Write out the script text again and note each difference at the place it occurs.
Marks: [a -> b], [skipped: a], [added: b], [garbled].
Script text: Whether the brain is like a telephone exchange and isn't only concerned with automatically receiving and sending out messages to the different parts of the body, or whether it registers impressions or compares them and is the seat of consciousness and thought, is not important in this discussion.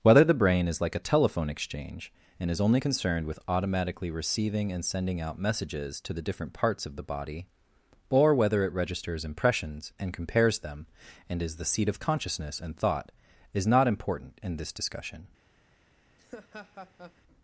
Whether the brain is like a telephone exchange and [isn't -> is] only concerned with automatically receiving and sending out messages to the different parts of the body, or whether it registers impressions [or -> and] compares them and is the seat of consciousness and thought, is not important in this discussion.